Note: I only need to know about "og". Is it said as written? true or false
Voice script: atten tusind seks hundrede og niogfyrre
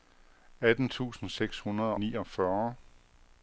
false